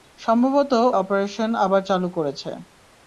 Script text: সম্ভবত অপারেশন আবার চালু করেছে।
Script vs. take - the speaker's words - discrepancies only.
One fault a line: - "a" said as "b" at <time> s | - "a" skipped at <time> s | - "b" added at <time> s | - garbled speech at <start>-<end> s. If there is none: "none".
none